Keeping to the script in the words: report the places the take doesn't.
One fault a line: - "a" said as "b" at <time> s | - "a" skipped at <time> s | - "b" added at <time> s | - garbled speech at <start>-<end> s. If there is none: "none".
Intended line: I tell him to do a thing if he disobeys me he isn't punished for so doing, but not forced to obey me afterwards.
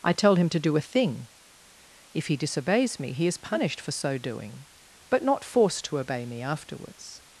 - "isn't" said as "is" at 3.3 s